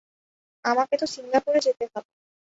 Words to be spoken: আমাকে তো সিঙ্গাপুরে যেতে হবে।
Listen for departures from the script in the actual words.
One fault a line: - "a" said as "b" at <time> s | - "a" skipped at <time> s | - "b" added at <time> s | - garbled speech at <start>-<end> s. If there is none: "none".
none